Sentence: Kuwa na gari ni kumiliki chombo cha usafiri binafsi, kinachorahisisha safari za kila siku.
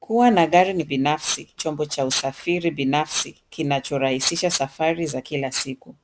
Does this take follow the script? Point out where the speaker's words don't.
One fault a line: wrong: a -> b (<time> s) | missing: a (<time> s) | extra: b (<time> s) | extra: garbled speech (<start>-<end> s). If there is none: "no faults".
wrong: kumiliki -> binafsi (0.8 s)